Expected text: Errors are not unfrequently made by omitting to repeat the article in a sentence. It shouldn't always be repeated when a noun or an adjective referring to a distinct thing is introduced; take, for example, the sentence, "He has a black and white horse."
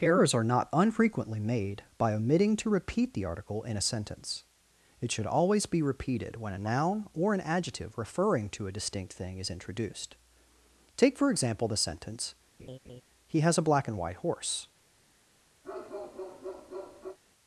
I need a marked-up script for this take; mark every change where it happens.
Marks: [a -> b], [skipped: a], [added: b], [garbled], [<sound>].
Errors are not unfrequently made by omitting to repeat the article in a sentence. It [shouldn't -> should] always be repeated when a noun or an adjective referring to a distinct thing is introduced; take, for example, the sentence, [laugh] "He has a black and white horse." [bark]